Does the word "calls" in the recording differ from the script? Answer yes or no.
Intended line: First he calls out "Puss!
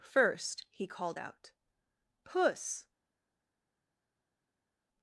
yes